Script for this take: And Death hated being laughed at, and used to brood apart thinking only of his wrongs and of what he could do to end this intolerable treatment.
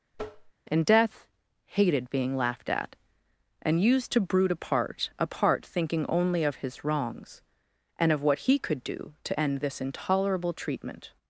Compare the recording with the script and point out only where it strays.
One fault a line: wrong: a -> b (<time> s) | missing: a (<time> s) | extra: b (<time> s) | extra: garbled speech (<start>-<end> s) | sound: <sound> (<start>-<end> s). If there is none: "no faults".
sound: tap (0.1-0.5 s)
extra: apart (5.2 s)